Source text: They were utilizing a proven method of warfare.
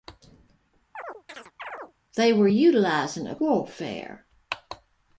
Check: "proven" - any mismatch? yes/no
yes